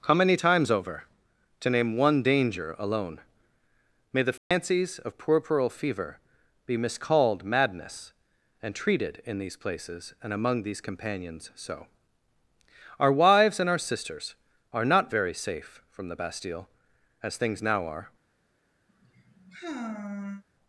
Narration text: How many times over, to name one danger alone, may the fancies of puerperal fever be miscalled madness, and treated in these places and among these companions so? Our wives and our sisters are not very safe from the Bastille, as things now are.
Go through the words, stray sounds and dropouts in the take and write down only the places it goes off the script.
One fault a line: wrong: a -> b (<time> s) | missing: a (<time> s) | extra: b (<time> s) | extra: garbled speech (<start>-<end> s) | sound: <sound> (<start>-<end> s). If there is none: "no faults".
sound: dropout (4.4-4.5 s)
sound: sigh (18.9-20.4 s)